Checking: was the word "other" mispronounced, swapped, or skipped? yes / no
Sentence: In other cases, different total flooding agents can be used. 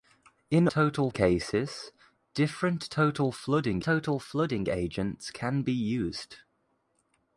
yes